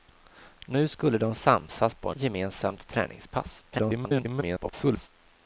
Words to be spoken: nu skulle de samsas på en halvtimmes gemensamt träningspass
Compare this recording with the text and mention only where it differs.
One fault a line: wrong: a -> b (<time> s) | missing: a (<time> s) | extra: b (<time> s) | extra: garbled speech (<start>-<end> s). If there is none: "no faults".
missing: halvtimmes (2.2 s)
extra: garbled speech (3.7-5.1 s)